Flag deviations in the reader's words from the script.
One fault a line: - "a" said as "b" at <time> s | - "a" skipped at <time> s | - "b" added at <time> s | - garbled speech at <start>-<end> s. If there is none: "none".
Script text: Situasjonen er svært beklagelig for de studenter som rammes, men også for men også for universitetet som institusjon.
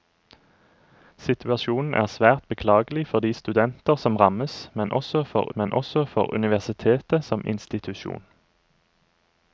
none